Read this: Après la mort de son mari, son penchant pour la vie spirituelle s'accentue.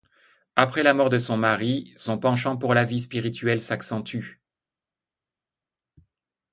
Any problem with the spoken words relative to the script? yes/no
no